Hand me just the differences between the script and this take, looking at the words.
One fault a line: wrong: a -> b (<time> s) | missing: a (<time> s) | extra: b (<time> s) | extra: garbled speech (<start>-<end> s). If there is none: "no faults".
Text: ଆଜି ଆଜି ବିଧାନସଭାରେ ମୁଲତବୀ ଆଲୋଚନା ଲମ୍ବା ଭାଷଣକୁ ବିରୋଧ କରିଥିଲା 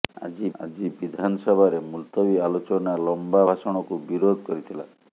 no faults